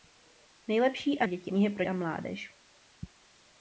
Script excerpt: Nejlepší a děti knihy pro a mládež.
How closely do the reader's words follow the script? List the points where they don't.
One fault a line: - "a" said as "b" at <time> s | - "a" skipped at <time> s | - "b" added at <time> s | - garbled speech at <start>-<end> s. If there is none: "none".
none